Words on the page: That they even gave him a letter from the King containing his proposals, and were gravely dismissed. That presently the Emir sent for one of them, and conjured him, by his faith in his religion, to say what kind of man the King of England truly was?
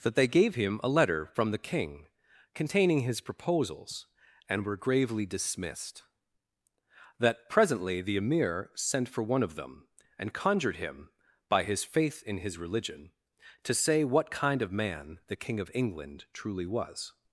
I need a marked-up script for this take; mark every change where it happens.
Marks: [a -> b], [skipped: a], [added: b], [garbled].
That they [skipped: even] gave him a letter from the King containing his proposals, and were gravely dismissed. That presently the Emir sent for one of them, and conjured him, by his faith in his religion, to say what kind of man the King of England truly was?